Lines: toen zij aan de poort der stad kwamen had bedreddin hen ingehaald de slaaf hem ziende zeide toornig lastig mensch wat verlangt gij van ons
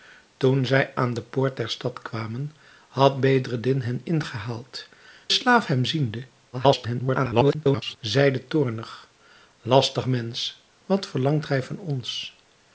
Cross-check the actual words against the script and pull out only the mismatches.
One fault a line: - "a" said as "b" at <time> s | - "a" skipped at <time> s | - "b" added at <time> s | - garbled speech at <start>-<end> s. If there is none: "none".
- "de" skipped at 4.9 s
- garbled speech at 6.5-8.0 s